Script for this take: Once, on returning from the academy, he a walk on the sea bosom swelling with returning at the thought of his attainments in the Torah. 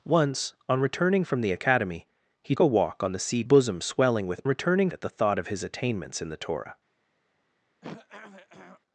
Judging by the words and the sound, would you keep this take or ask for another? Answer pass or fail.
fail